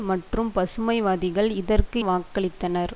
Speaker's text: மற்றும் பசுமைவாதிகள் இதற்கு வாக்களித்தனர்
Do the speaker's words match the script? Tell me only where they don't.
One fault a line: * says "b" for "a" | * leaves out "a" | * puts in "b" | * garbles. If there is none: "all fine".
all fine